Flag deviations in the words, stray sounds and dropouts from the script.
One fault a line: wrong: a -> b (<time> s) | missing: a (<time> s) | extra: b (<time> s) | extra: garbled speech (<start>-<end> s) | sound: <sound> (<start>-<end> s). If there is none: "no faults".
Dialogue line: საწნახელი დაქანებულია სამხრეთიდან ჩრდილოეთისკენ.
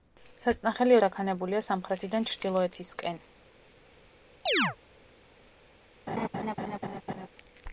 sound: chirp (4.5-4.8 s)
sound: laugh (6.1-7.3 s)